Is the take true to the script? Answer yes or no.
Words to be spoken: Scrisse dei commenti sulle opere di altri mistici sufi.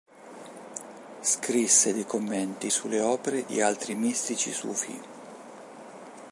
yes